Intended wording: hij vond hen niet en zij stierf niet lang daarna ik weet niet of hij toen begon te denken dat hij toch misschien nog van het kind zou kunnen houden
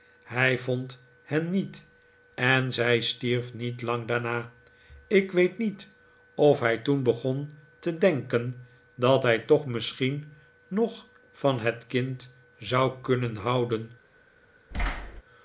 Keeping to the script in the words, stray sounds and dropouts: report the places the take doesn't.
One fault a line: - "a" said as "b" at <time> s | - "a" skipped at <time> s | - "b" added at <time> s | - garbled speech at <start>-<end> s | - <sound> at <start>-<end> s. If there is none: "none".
- thud at 14.7-15.2 s